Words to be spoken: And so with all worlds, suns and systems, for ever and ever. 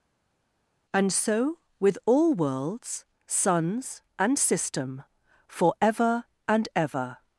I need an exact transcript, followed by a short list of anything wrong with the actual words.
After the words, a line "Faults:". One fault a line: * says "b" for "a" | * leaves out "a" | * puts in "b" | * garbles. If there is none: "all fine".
And so with all worlds, suns and system, for ever and ever.
Faults:
* says "system" for "systems"